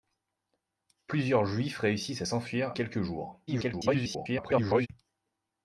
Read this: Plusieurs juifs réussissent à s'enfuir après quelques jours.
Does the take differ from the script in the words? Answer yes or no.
yes